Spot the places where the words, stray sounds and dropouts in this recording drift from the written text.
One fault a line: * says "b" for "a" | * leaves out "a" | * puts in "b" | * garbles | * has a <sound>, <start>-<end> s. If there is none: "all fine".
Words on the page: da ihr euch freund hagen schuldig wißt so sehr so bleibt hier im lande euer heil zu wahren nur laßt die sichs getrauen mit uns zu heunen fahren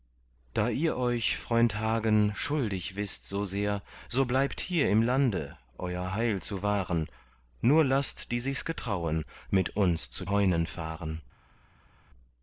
all fine